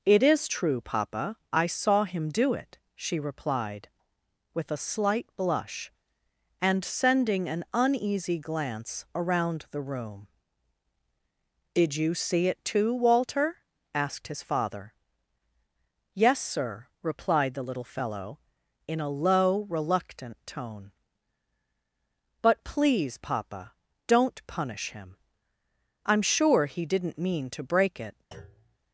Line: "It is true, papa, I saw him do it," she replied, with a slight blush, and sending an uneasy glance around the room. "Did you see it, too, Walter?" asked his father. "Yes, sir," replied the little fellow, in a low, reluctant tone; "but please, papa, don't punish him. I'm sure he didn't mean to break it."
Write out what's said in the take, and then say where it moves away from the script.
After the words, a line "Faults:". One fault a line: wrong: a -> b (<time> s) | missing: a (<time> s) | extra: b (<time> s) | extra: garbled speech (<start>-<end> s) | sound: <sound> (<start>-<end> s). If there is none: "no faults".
"It is true, papa, I saw him do it," she replied, with a slight blush, and sending an uneasy glance around the room. "Did you see it, too, Walter?" asked his father. "Yes, sir," replied the little fellow, in a low, reluctant tone; "but please, papa, don't punish him. I'm sure he didn't mean to break it."
Faults:
sound: thud (28.3-28.8 s)